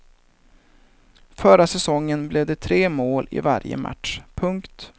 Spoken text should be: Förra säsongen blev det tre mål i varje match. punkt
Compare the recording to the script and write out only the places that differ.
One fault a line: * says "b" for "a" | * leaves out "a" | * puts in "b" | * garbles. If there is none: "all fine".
all fine